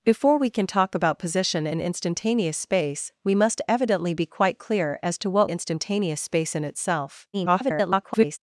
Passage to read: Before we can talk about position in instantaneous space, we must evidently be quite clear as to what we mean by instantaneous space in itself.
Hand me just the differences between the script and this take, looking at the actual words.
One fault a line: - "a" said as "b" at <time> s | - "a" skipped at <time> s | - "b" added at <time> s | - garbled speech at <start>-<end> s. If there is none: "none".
- "we mean by" skipped at 5.5 s
- garbled speech at 7.3-8.4 s